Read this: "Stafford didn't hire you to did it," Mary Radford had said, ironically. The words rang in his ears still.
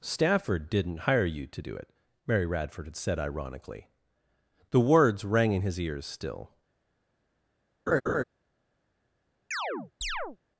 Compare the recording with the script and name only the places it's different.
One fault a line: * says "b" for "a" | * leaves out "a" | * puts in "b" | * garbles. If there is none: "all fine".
* says "do" for "did"